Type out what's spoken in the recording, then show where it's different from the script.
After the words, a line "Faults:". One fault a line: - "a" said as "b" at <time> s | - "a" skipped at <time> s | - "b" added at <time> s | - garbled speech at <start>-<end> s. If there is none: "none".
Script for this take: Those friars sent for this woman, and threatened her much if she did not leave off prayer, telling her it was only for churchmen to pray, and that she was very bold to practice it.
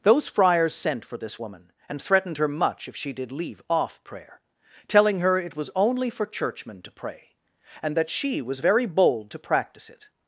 Those friars sent for this woman, and threatened her much if she did leave off prayer, telling her it was only for churchmen to pray, and that she was very bold to practice it.
Faults:
- "not" skipped at 3.3 s